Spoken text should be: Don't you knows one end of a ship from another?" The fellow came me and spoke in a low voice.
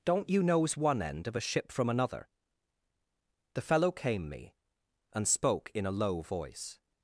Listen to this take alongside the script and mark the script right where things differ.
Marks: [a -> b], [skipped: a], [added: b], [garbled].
Don't you knows one end of a ship from another?" The fellow came me and spoke in a low voice.